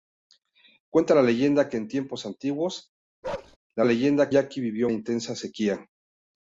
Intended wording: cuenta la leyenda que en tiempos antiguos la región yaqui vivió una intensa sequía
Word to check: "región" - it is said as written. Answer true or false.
false